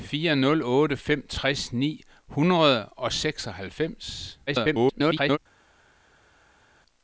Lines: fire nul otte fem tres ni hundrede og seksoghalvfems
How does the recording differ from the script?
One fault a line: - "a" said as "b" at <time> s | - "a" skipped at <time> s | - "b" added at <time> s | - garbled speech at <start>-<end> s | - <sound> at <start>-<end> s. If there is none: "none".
- garbled speech at 4.5-5.4 s